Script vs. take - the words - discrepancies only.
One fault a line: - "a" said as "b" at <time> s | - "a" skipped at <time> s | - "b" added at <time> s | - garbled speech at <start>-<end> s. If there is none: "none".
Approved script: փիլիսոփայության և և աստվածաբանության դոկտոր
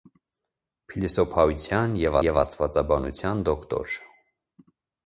none